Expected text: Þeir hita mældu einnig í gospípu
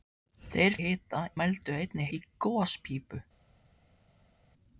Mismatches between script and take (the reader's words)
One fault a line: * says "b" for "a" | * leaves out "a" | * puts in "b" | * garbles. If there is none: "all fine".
all fine